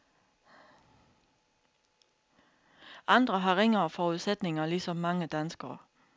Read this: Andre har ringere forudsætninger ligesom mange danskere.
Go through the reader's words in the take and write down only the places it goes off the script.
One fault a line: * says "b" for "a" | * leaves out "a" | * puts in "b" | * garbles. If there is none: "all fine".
all fine